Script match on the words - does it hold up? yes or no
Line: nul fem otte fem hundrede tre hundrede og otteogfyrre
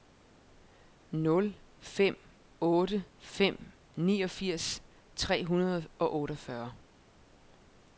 no